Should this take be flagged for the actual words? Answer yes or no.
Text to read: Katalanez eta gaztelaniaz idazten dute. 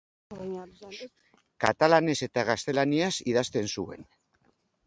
yes